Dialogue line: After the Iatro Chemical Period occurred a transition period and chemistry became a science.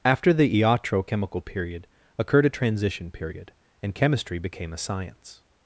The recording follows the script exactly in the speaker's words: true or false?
true